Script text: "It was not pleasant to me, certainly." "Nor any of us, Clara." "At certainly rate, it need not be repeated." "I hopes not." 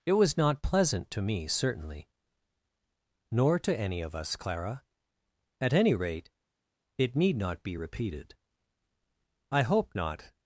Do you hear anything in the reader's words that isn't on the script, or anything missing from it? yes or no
yes